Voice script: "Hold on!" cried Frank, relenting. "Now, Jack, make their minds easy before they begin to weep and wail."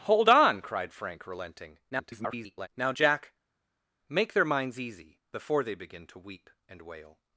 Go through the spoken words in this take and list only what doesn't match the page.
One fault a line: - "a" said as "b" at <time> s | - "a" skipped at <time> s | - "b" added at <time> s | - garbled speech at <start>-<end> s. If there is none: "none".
- garbled speech at 1.9-2.7 s